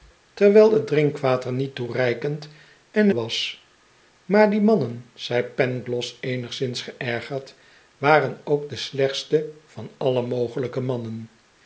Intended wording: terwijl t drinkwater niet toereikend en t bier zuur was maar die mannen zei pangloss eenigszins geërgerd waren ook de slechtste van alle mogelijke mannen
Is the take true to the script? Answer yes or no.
no